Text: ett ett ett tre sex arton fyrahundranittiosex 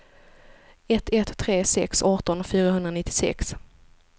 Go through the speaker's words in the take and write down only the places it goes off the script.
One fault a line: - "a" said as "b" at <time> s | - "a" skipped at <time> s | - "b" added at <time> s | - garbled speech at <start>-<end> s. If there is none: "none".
- "ett" skipped at 1.4 s